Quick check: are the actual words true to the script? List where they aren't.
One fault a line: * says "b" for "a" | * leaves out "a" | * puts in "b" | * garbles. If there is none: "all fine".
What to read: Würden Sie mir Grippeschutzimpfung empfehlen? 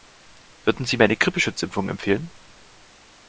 * puts in "eine"